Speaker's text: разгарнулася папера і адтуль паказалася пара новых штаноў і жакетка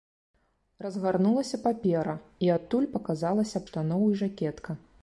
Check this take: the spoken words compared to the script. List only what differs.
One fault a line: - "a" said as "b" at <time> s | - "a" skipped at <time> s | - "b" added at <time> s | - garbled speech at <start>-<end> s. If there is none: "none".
- "пара новых" skipped at 3.6 s